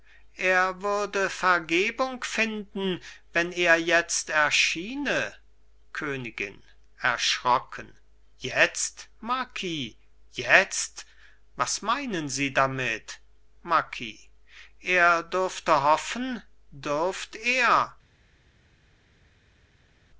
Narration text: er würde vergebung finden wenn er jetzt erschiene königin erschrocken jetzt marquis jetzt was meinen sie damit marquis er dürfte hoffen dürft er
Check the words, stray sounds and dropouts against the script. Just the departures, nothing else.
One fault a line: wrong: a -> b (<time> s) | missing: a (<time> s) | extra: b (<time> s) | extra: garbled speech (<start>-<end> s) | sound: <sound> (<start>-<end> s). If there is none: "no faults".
no faults